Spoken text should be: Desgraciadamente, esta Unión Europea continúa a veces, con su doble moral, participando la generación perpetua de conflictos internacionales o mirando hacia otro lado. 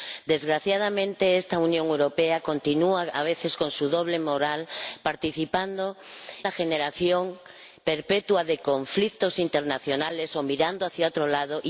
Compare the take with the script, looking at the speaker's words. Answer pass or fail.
pass